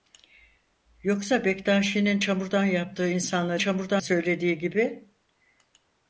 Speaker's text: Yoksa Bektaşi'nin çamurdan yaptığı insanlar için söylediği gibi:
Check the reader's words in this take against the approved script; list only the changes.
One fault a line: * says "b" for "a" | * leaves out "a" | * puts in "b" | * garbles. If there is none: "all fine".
* says "çamurdan" for "için"